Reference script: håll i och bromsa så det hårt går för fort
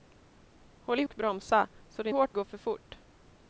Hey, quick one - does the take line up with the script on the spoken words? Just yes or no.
yes